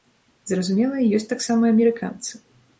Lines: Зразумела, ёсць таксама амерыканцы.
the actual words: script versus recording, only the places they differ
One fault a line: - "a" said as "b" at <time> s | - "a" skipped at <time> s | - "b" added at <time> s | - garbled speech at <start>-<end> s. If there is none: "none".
none